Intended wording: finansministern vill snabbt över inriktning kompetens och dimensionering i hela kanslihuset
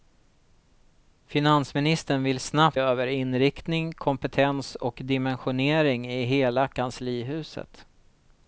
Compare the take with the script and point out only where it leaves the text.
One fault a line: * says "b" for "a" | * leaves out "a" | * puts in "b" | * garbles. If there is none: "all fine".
all fine